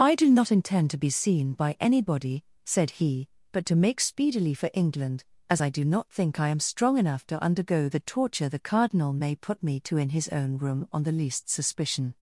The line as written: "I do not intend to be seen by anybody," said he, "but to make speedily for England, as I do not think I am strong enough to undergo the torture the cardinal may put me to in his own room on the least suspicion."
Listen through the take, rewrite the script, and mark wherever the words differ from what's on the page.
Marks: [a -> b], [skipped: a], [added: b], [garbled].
"I do not intend to be seen by anybody," said he, "but to make speedily for England, as I do not think I am strong enough to undergo the torture the cardinal may put me to in his own room on the least suspicion."